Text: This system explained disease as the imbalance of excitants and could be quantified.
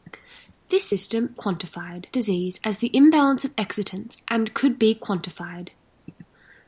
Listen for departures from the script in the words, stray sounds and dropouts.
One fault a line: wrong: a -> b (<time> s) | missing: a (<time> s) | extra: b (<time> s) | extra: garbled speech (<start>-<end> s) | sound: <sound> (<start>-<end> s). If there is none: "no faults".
wrong: explained -> quantified (1.4 s)